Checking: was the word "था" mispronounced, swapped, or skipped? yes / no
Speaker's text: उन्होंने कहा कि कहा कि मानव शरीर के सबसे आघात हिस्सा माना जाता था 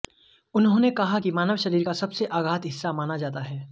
yes